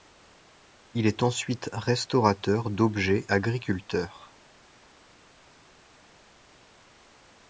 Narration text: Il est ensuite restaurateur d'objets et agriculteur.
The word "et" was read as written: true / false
false